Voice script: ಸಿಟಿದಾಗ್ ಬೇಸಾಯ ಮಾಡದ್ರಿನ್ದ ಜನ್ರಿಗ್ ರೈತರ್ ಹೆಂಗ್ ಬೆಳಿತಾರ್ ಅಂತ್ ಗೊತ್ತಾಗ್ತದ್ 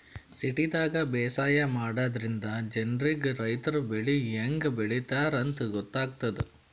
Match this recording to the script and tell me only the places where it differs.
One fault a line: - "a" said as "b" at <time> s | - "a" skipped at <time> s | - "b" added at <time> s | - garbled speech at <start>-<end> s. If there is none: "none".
- "ಬೆಳಿ" added at 3.9 s